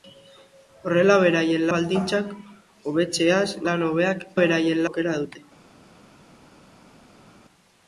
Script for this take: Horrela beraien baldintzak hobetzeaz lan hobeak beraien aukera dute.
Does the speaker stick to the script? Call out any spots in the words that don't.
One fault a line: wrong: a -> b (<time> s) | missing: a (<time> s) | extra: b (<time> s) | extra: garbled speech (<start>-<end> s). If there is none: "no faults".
no faults